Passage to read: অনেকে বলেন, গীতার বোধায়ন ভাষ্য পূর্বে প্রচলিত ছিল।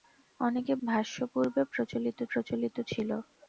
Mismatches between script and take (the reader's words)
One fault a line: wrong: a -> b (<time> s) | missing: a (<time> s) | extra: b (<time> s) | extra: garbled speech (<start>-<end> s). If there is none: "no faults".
missing: বলেন গীতার বোধায়ন (0.7 s)
extra: প্রচলিত (2.3 s)